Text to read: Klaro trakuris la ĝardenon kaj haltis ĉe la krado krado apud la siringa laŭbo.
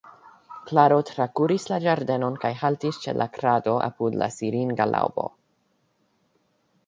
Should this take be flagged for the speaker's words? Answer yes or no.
yes